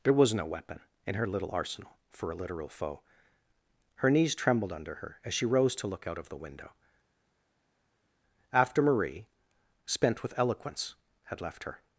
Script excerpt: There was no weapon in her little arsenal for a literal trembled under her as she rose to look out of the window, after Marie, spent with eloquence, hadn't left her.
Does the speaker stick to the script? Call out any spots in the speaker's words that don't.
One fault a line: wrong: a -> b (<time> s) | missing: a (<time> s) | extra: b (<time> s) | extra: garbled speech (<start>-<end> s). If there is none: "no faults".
extra: foe Her knees (2.7 s)
wrong: hadn't -> had (11.2 s)